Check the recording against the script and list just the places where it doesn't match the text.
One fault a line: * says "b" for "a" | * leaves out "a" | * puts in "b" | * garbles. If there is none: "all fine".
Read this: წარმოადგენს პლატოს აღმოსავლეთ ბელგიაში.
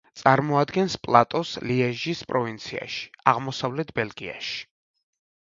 * puts in "ლიეჟის პროვინციაში"